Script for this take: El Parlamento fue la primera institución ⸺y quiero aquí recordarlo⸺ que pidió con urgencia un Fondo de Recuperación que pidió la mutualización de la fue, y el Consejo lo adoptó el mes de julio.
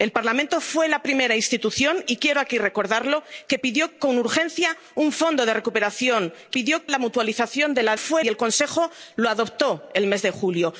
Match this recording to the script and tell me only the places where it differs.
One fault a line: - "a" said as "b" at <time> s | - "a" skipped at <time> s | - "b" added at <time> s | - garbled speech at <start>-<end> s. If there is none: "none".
none